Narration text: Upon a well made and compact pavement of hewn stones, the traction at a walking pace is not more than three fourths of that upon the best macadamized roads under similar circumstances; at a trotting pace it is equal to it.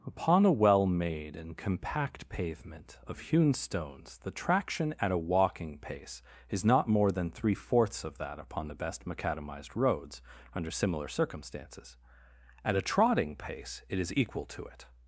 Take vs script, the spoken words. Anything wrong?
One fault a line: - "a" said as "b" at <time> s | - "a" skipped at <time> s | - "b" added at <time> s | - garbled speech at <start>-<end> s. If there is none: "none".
none